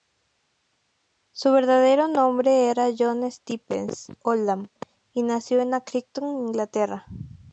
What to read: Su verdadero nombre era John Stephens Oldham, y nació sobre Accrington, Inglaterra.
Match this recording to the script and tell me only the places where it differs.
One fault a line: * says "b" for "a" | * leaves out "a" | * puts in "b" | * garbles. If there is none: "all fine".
* says "en" for "sobre"